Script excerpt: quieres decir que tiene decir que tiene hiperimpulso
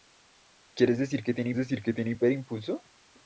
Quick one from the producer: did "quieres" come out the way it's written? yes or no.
yes